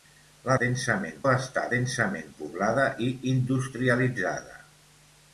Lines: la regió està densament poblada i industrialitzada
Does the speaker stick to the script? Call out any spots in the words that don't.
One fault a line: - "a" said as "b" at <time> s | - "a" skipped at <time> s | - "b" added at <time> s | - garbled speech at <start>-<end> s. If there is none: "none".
- "regió" said as "densament" at 0.6 s